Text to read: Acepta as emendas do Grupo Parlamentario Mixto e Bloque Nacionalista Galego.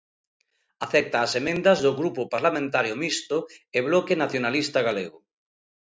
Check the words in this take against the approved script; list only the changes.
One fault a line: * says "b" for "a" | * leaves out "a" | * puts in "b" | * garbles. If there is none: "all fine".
all fine